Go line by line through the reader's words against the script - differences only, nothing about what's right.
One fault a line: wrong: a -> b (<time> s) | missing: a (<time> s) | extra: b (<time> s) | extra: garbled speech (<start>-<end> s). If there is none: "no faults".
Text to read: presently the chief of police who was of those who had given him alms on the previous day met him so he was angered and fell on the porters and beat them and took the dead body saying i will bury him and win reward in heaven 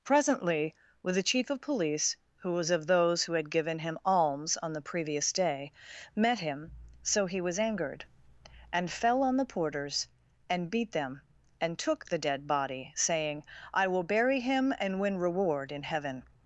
extra: with (1.0 s)